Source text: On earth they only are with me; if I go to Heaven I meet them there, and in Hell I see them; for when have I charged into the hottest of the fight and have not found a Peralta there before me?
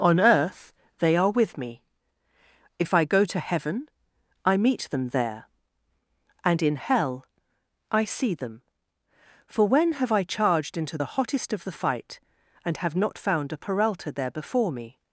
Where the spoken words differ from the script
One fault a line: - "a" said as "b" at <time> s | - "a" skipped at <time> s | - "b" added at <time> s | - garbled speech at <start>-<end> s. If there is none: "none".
- "only" skipped at 1.1 s